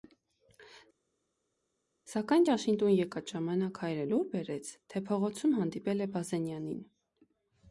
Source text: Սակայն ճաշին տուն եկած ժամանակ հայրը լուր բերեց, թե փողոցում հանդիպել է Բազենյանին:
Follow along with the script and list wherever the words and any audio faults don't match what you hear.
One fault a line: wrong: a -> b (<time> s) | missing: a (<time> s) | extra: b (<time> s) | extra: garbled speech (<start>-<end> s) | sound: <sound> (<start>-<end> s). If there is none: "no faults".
no faults